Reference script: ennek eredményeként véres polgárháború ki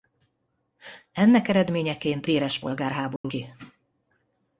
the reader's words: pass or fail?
pass